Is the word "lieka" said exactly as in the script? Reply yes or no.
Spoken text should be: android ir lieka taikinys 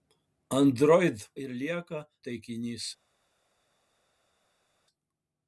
yes